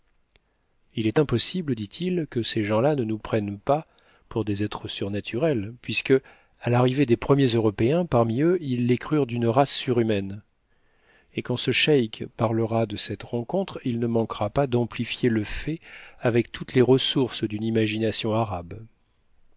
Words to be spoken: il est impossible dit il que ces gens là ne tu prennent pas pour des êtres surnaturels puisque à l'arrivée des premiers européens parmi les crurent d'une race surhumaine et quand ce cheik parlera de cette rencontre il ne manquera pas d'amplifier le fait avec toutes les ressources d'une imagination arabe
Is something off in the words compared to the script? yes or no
yes